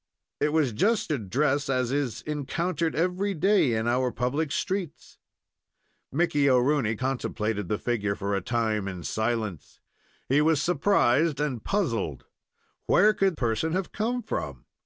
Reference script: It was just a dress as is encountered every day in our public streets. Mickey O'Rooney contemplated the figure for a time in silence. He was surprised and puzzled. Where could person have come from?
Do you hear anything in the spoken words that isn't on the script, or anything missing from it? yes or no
no